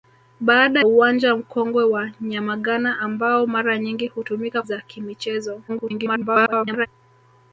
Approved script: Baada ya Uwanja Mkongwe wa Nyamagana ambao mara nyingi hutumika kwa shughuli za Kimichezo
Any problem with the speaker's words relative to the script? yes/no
yes